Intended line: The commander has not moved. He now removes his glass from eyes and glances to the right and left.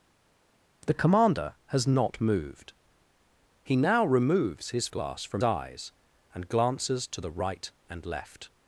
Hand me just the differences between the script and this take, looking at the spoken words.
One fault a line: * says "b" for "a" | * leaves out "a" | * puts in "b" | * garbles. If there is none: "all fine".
all fine